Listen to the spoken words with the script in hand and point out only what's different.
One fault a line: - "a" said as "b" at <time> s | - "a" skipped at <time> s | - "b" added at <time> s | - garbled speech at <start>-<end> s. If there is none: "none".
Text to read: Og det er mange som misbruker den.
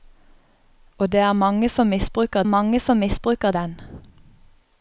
- "mange som misbruker" added at 2.4 s